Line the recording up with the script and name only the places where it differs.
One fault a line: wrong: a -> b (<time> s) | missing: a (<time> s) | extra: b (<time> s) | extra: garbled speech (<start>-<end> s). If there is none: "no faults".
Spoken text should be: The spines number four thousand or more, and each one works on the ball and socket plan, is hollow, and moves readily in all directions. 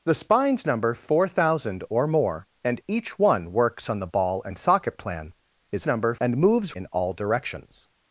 wrong: hollow -> number (5.9 s)
missing: readily (6.8 s)